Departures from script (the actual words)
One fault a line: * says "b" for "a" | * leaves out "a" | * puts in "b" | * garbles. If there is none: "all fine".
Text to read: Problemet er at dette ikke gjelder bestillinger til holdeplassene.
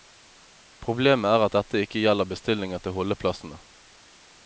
all fine